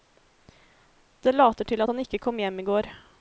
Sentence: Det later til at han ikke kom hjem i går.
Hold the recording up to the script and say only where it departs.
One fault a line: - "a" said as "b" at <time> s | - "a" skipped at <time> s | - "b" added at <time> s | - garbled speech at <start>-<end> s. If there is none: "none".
none